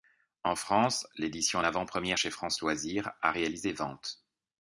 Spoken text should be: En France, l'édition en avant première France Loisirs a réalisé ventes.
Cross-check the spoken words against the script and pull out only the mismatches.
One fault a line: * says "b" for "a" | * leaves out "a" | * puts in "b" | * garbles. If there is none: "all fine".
* puts in "chez"